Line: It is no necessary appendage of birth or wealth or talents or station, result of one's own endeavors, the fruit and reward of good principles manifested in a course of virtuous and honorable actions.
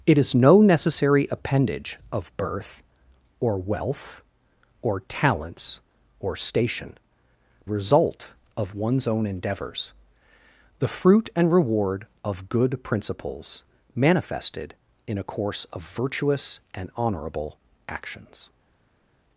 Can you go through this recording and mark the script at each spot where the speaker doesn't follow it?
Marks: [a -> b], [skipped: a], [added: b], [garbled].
It is no necessary appendage of birth or wealth or talents or station, result of one's own endeavors, the fruit and reward of good principles manifested in a course of virtuous and honorable actions.